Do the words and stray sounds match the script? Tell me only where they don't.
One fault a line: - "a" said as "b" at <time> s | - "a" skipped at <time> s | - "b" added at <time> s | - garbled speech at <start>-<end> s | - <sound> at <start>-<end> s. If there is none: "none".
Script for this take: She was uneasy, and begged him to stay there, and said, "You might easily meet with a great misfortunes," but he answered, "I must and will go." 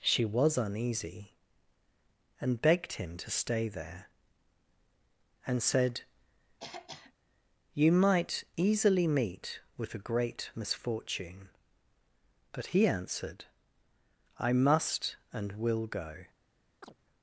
- throat clearing at 6.6-7.1 s
- "misfortunes" said as "misfortune" at 10.5 s
- chirp at 16.8-16.9 s